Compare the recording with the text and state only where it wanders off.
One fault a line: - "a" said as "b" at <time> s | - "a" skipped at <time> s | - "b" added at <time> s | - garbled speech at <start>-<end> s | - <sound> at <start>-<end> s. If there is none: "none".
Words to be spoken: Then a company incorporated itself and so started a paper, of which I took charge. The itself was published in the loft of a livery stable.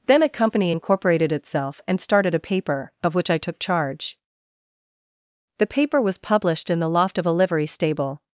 - "so" skipped at 2.0 s
- "itself" said as "paper" at 5.7 s